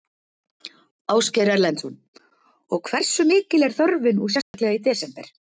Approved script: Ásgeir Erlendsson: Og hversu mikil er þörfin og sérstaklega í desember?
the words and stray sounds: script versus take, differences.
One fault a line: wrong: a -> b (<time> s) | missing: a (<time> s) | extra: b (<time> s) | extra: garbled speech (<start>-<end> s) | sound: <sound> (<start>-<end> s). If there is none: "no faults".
sound: dropout (4.4-4.5 s)